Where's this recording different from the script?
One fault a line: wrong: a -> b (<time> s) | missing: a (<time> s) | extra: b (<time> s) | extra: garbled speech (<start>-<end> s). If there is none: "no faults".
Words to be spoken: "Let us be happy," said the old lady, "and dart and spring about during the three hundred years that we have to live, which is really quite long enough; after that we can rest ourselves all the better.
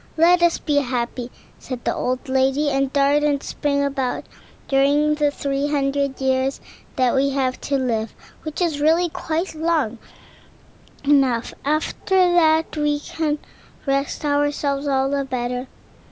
no faults